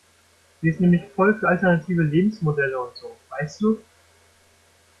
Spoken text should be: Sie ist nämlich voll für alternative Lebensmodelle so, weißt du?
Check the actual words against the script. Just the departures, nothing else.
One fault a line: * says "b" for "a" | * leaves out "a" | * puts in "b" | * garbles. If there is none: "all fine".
* puts in "und"